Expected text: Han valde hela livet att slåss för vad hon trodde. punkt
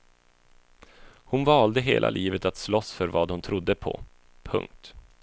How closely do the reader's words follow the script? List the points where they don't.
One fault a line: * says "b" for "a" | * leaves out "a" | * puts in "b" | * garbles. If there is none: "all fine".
* says "Hon" for "Han"
* puts in "på"